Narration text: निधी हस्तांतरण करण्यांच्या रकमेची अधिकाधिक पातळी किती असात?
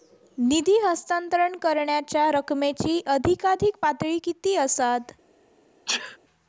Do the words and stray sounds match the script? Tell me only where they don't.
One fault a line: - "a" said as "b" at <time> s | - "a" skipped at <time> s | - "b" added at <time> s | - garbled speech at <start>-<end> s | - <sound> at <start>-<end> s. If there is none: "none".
- sneeze at 5.9-6.2 s